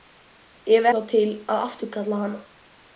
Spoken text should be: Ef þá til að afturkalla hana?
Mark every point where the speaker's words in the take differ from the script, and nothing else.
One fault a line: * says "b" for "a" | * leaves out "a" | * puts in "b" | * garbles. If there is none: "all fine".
all fine